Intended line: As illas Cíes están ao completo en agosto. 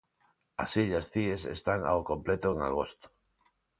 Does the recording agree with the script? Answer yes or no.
yes